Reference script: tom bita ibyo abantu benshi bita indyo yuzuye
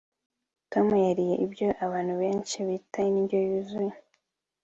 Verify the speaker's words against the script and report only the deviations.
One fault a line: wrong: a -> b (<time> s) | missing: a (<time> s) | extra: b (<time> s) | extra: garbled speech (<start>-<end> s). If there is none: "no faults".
wrong: bita -> yariye (1.1 s)